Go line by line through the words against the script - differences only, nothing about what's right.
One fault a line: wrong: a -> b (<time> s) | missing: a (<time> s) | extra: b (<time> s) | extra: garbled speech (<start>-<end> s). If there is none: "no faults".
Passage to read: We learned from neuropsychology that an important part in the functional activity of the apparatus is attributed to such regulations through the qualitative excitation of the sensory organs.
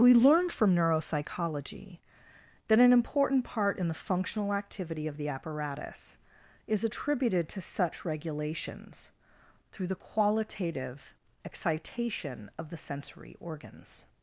no faults